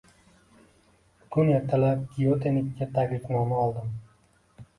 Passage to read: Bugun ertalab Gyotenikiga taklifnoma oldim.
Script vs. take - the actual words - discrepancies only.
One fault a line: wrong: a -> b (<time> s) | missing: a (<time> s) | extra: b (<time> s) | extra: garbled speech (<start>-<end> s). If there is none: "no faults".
no faults